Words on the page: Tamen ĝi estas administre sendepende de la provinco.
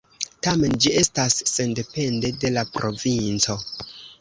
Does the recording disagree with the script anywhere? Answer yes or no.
yes